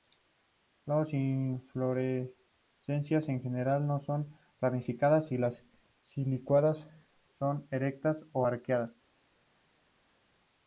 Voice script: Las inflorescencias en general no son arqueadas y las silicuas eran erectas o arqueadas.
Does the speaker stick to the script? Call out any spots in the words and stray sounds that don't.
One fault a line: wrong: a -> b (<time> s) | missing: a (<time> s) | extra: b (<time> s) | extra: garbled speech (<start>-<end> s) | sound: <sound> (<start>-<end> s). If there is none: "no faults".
wrong: arqueadas -> ramificadas (4.6 s)
wrong: eran -> son (7.4 s)